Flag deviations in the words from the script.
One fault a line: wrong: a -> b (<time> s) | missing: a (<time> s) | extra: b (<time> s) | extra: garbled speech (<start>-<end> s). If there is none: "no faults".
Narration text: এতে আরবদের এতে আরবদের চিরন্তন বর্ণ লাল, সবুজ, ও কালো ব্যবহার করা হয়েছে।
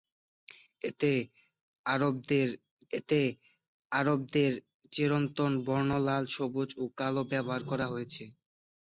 no faults